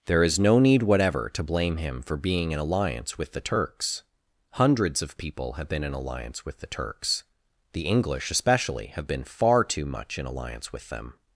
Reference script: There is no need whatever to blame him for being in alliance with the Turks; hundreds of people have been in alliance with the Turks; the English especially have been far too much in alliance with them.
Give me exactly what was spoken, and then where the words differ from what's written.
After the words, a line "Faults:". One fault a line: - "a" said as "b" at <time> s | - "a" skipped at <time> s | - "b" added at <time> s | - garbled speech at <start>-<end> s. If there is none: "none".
There is no need whatever to blame him for being in alliance with the Turks; hundreds of people have been in alliance with the Turks; the English especially have been far too much in alliance with them.
Faults:
none